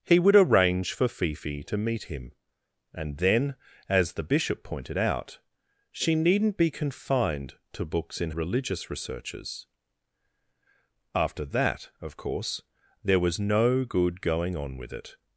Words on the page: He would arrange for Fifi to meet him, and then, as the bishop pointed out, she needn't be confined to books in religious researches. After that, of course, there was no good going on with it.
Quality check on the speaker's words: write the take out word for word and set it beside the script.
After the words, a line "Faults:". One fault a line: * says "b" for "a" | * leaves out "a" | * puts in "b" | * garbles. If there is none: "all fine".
He would arrange for Fifi to meet him, and then, as the bishop pointed out, she needn't be confined to books in religious researches. After that, of course, there was no good going on with it.
Faults:
all fine